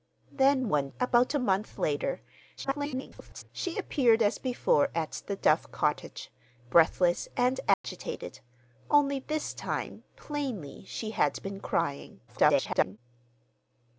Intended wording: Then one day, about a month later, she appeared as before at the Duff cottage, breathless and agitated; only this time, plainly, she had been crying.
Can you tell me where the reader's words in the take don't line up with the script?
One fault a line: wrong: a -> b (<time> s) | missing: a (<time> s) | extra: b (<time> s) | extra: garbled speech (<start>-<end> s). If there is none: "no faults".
missing: day (0.9 s)
extra: garbled speech (2.6-3.5 s)
extra: garbled speech (12.3-13.0 s)